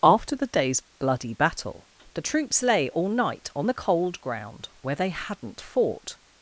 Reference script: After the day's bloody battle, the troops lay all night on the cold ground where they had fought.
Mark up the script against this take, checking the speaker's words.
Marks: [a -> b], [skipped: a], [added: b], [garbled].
After the day's bloody battle, the troops lay all night on the cold ground where they [had -> hadn't] fought.